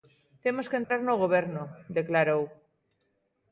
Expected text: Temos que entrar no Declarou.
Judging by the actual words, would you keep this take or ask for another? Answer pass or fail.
fail